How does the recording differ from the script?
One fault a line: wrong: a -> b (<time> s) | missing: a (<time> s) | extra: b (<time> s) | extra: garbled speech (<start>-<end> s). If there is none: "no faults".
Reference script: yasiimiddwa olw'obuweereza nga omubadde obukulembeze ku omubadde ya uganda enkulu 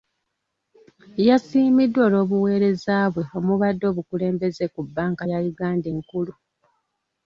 wrong: nga -> bwe (3.1 s)
wrong: omubadde -> bbanka (4.8 s)